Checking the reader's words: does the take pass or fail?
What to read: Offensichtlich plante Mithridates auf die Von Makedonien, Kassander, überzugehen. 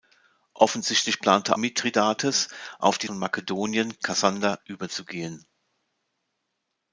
pass